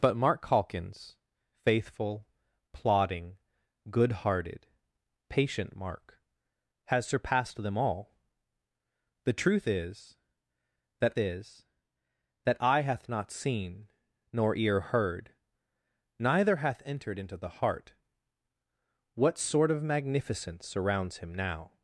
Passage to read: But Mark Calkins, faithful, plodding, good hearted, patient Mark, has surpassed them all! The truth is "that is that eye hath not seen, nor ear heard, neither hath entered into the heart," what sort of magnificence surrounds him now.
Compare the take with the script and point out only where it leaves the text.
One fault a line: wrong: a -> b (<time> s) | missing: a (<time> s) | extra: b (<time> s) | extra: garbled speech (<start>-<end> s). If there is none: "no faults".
no faults